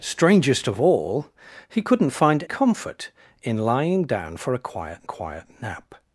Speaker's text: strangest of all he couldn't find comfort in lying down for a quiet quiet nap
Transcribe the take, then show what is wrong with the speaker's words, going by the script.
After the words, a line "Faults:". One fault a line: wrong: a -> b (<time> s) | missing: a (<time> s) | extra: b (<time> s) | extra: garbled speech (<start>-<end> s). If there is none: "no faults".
strangest of all he couldn't find comfort in lying down for a quiet quiet nap
Faults:
no faults